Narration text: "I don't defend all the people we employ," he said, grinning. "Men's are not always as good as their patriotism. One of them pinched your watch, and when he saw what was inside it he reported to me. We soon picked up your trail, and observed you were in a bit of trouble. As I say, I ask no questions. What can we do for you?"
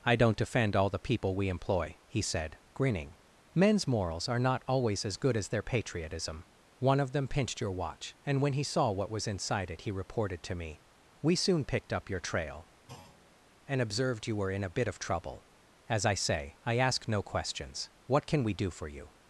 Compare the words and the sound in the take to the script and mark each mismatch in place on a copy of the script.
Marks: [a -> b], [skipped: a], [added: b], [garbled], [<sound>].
"I don't defend all the people we employ," he said, grinning. "Men's [added: morals] are not always as good as their patriotism. One of them pinched your watch, and when he saw what was inside it he reported to me. We soon picked up your trail, [thud] and observed you were in a bit of trouble. As I say, I ask no questions. What can we do for you?"